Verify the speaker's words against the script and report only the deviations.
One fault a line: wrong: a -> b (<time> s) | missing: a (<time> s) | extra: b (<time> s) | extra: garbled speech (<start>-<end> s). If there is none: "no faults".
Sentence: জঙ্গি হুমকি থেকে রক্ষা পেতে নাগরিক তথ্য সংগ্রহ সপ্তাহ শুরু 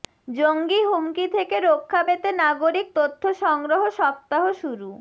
no faults